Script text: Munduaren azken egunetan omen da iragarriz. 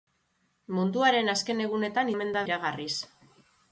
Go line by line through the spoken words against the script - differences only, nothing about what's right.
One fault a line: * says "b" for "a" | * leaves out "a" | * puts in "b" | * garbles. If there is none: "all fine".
all fine